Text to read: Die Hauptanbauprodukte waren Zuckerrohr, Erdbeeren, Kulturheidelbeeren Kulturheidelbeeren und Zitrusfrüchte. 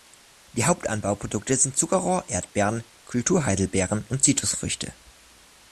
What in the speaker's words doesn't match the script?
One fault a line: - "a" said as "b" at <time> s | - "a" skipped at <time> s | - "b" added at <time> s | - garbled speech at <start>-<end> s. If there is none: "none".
- "waren" said as "sind" at 1.6 s
- "Kulturheidelbeeren" skipped at 4.0 s